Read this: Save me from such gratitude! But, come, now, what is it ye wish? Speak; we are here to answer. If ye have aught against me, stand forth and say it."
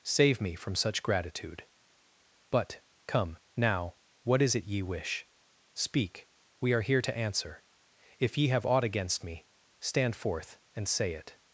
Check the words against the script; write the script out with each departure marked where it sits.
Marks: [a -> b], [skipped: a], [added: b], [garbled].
Save me from such gratitude! But, come, now, what is it ye wish? Speak; we are here to answer. If ye have aught against me, stand forth and say it."